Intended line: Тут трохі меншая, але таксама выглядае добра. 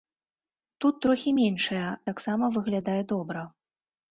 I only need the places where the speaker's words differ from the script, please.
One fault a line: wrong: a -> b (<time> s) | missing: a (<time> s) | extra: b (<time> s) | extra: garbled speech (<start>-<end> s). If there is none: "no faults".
missing: але (1.9 s)